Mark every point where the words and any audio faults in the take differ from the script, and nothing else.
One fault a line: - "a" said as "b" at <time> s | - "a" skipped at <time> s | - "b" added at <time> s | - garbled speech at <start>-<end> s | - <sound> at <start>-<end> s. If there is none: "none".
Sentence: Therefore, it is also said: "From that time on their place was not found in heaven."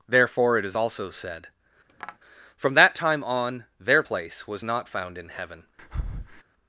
- tap at 1.9-2.2 s
- breath at 5.8-6.4 s